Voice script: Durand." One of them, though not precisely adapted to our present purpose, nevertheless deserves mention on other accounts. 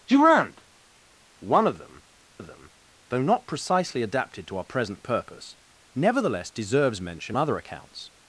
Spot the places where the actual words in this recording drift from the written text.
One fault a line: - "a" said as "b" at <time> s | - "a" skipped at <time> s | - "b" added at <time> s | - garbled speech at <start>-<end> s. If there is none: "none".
- "of them" added at 2.4 s
- "on" skipped at 7.4 s